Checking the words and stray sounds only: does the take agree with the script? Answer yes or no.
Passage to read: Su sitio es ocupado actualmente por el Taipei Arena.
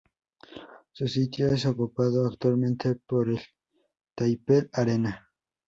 yes